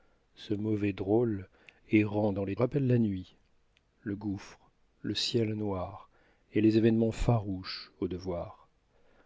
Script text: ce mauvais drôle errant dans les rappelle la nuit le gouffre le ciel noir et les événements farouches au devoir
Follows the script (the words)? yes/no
yes